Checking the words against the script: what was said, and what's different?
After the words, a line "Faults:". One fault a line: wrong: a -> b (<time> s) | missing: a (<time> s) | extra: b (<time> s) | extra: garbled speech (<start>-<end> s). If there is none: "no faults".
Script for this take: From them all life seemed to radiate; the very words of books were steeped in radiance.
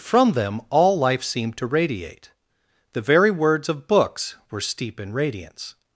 From them all life seemed to radiate; the very words of books were steep in radiance.
Faults:
wrong: steeped -> steep (4.6 s)